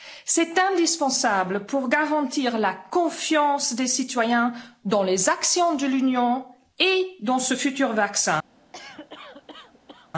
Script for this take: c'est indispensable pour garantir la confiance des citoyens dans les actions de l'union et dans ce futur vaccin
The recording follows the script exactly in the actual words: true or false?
true